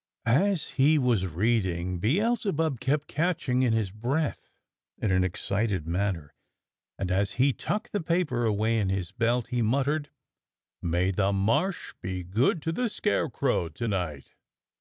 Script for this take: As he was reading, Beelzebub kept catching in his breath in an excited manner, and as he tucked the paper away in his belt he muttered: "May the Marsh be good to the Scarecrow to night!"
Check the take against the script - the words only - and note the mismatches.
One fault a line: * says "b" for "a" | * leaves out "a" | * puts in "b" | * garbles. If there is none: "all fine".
all fine